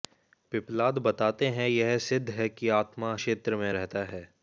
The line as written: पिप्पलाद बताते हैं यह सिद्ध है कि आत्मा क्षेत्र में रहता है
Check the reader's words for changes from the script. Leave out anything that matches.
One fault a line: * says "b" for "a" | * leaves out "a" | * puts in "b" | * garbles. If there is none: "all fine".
all fine